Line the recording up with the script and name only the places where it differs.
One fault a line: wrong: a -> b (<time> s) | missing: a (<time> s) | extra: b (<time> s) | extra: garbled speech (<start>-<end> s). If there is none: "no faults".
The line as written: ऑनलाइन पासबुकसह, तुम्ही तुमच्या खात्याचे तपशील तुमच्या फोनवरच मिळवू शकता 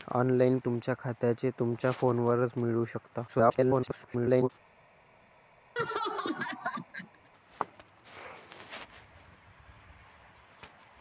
missing: पासबुकसह तुम्ही (0.6 s)
missing: तपशील (1.5 s)
extra: garbled speech (3.3-4.5 s)